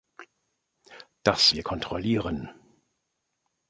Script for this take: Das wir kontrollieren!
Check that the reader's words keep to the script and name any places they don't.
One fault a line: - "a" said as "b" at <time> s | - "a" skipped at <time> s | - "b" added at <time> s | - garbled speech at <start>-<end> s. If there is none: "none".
none